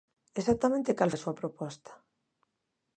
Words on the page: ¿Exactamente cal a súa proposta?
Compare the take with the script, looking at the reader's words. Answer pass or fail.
pass